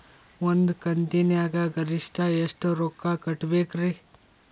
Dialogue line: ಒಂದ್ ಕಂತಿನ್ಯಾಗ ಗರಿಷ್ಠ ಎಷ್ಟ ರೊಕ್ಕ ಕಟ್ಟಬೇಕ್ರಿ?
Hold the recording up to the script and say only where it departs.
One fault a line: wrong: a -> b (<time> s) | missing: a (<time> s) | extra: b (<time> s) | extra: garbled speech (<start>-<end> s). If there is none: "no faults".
no faults